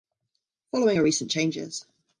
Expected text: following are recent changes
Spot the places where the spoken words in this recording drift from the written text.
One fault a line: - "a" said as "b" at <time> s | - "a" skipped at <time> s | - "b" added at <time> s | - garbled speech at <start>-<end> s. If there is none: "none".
none